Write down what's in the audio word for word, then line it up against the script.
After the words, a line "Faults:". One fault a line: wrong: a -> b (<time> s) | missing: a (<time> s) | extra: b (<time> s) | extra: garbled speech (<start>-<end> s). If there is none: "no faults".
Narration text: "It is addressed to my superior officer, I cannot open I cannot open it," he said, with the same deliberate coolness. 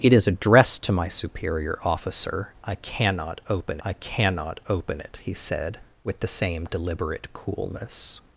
"It is addressed to my superior officer, I cannot open I cannot open it," he said, with the same deliberate coolness.
Faults:
no faults